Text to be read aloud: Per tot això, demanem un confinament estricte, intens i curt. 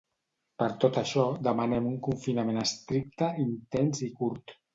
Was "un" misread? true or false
false